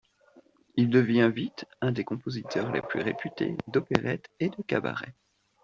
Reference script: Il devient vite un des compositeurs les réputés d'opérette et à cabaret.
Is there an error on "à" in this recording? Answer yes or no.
yes